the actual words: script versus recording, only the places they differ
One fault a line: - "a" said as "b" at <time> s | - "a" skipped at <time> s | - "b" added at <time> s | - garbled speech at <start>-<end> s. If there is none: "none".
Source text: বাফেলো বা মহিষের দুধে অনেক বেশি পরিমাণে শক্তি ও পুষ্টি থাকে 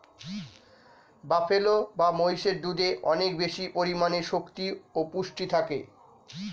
none